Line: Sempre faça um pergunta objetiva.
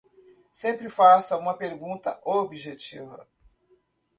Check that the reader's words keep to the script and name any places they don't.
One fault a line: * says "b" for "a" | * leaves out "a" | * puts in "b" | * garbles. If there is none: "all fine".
* says "uma" for "um"